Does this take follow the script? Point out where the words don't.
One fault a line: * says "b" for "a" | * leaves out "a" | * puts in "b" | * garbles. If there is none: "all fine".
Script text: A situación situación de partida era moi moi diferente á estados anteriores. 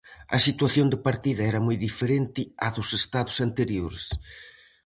* leaves out "situación"
* leaves out "moi"
* puts in "dos"